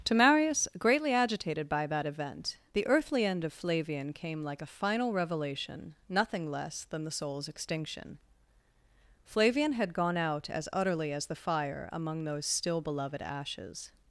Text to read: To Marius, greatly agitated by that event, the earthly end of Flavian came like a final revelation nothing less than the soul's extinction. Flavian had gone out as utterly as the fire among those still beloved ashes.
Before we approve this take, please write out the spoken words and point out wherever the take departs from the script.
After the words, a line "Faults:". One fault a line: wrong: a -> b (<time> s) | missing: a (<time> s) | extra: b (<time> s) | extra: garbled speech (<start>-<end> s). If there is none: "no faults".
To Marius, greatly agitated by that event, the earthly end of Flavian came like a final revelation nothing less than the soul's extinction. Flavian had gone out as utterly as the fire among those still beloved ashes.
Faults:
no faults